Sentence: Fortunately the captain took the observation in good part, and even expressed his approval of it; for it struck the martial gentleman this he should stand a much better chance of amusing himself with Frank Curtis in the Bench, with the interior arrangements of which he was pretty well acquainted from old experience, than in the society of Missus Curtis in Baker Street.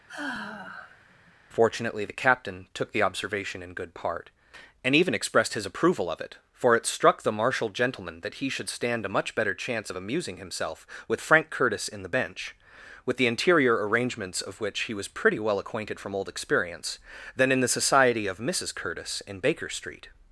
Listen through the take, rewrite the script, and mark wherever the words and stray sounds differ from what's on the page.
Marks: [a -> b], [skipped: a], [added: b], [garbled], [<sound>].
[sigh] Fortunately the captain took the observation in good part, and even expressed his approval of it; for it struck the martial gentleman [this -> that] he should stand a much better chance of amusing himself with Frank Curtis in the Bench, with the interior arrangements of which he was pretty well acquainted from old experience, than in the society of Missus Curtis in Baker Street.